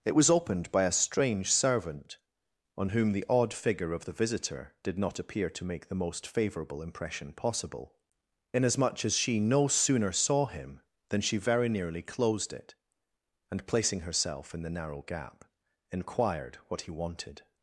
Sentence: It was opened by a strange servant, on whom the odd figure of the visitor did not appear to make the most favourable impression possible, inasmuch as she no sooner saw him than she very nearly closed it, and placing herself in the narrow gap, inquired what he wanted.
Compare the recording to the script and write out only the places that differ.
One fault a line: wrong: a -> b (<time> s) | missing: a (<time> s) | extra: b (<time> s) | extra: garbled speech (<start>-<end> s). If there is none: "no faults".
no faults